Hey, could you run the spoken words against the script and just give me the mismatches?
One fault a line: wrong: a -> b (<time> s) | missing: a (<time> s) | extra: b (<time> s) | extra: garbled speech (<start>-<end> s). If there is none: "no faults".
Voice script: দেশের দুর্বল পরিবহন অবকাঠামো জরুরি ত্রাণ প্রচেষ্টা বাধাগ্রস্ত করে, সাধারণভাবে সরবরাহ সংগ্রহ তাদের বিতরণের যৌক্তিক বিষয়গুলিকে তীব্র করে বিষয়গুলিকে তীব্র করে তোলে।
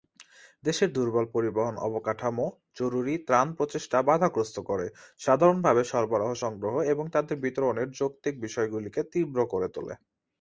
extra: এবং (6.9 s)
missing: বিষয়গুলিকে তীব্র করে (9.7 s)